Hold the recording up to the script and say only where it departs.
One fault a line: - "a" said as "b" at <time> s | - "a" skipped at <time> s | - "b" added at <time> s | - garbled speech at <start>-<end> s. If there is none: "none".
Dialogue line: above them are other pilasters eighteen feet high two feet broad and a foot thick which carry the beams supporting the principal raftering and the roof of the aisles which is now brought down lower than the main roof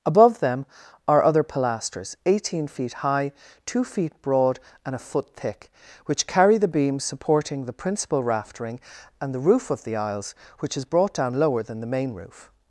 - "now" skipped at 10.8 s